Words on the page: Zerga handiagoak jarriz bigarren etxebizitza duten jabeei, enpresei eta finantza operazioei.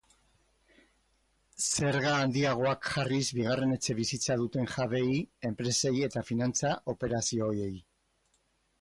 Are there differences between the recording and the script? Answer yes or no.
no